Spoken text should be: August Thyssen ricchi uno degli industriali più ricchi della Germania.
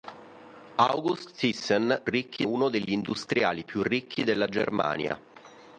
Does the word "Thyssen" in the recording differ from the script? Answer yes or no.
no